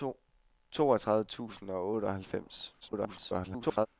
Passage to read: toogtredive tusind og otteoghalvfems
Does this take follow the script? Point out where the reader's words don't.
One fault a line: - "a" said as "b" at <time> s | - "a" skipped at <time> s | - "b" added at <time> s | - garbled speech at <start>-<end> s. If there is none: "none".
- garbled speech at 2.8-3.9 s